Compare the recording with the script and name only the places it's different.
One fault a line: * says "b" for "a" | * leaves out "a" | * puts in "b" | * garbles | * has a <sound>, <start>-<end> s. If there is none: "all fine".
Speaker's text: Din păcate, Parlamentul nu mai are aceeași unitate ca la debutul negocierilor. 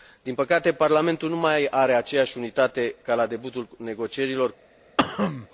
* has a cough, 5.0-5.5 s